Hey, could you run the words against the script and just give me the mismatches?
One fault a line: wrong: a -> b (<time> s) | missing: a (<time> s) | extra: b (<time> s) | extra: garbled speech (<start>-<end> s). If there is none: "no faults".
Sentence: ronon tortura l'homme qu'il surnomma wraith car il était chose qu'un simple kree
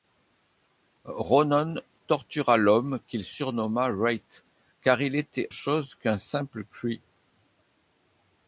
no faults